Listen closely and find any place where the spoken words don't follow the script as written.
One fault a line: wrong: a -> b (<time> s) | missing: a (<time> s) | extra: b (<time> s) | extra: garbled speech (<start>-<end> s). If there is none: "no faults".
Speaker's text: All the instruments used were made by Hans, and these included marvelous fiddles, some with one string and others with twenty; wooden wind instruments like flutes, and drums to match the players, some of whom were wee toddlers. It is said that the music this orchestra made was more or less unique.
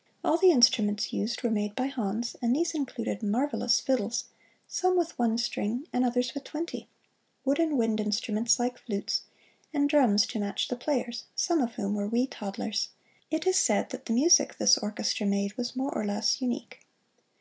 no faults